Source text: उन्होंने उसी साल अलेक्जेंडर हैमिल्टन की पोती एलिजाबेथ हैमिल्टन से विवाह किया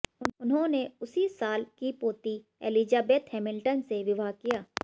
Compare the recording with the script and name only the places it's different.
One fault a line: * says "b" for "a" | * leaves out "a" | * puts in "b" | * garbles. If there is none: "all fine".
* leaves out "अलेक्जेंडर हैमिल्टन"